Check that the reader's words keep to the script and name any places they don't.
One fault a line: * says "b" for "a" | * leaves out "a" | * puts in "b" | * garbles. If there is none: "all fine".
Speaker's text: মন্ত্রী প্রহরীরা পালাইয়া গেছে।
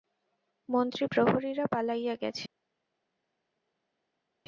all fine